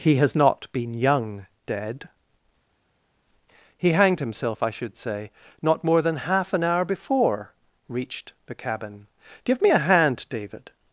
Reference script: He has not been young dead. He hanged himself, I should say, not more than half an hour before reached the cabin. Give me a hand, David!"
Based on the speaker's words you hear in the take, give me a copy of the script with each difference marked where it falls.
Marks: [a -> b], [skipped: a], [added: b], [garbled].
He has not been young dead. He hanged himself, I should say, not more than half an hour before reached the cabin. Give me a hand, David!"